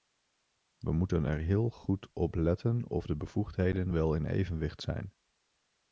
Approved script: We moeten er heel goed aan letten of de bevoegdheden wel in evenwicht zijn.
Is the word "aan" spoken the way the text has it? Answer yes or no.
no